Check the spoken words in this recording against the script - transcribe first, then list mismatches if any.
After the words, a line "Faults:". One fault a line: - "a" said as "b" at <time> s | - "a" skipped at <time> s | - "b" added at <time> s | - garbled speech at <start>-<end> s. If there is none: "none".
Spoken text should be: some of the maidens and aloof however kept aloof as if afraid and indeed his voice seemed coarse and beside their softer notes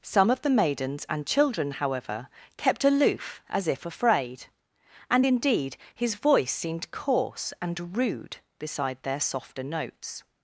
some of the maidens and children however kept aloof as if afraid and indeed his voice seemed coarse and rude beside their softer notes
Faults:
- "aloof" said as "children" at 1.3 s
- "rude" added at 7.9 s